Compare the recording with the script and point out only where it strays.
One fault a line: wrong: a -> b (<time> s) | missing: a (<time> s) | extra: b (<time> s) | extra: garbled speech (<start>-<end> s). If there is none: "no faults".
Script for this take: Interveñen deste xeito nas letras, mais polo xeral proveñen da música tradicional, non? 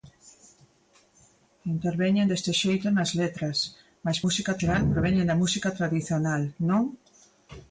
wrong: polo -> música (4.2 s)